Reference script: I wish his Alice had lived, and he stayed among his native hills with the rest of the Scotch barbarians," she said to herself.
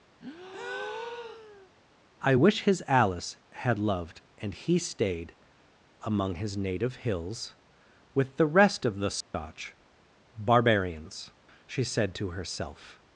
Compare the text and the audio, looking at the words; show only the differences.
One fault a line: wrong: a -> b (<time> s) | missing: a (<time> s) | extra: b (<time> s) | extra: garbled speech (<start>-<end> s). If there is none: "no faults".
wrong: lived -> loved (3.8 s)